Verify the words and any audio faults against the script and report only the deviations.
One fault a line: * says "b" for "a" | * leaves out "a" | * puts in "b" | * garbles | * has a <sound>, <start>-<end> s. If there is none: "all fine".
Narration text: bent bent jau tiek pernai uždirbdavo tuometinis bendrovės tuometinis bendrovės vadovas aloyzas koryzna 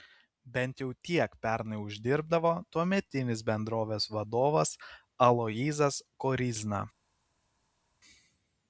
* leaves out "bent"
* leaves out "tuometinis bendrovės"